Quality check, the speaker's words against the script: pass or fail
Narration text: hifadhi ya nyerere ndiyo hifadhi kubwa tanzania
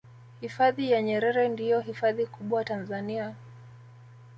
pass